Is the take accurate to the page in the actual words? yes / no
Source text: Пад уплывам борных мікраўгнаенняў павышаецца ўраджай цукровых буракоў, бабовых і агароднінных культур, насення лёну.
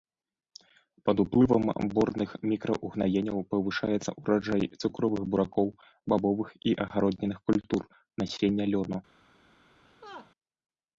yes